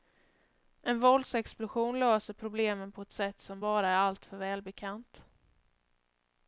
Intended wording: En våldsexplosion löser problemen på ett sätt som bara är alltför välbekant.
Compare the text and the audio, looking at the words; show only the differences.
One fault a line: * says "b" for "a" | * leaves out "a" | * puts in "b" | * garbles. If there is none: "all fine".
all fine